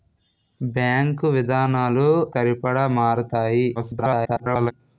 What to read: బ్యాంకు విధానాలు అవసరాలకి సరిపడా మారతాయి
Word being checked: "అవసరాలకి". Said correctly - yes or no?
no